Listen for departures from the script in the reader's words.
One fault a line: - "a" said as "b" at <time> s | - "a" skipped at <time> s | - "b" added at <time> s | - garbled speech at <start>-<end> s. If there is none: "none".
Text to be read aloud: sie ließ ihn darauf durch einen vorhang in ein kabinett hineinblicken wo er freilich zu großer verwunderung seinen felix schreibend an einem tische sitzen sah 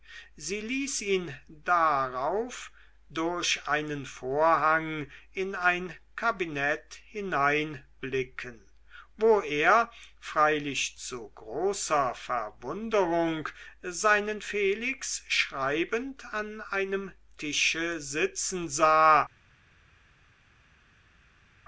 none